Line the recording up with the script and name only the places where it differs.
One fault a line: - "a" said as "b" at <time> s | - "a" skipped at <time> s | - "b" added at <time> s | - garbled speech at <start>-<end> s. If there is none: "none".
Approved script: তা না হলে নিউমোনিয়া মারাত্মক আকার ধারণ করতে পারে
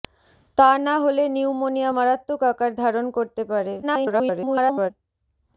- garbled speech at 3.8-4.9 s